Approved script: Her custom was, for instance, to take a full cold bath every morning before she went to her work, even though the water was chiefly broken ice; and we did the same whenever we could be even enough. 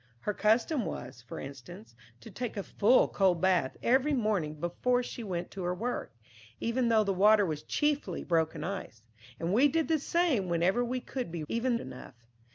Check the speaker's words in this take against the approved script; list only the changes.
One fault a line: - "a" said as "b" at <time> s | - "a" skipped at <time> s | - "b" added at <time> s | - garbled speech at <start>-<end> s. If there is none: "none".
none